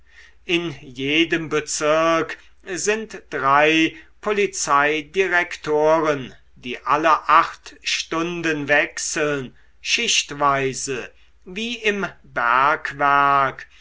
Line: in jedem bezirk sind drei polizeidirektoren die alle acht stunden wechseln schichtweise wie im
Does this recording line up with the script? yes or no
yes